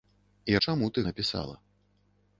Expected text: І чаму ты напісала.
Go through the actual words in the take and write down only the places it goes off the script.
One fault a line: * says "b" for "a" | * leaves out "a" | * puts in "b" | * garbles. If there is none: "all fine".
all fine